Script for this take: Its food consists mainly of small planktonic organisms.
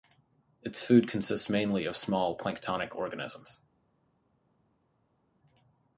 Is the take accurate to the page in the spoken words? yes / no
yes